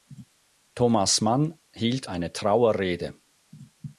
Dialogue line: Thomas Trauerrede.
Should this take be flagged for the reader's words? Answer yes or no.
yes